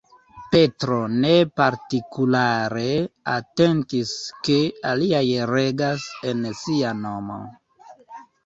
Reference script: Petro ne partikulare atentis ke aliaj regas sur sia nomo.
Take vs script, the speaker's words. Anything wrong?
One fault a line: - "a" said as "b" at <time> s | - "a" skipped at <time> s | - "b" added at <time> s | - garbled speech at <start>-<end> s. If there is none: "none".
- "sur" said as "en" at 6.3 s